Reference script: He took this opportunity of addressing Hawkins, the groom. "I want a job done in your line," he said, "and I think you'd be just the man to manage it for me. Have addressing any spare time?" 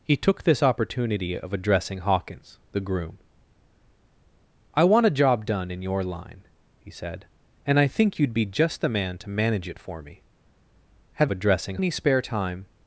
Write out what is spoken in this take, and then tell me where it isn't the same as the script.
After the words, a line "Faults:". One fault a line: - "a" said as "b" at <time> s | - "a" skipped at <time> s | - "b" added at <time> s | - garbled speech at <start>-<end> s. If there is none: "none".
He took this opportunity of addressing Hawkins, the groom. "I want a job done in your line," he said, "and I think you'd be just the man to manage it for me. Have addressing any spare time?"
Faults:
none